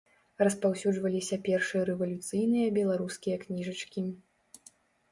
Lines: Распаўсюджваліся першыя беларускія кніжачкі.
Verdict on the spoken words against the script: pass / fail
fail